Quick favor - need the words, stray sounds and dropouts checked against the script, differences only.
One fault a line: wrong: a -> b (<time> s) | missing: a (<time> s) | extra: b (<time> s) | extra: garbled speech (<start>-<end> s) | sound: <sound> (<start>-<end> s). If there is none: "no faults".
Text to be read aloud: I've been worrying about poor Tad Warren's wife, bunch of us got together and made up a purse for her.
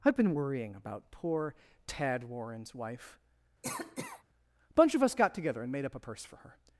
sound: cough (3.6-4.2 s)
extra: a (4.7 s)